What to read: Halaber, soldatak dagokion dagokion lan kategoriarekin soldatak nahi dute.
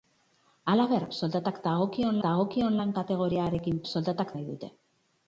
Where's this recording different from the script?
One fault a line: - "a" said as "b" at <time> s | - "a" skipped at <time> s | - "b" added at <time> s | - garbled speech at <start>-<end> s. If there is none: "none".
none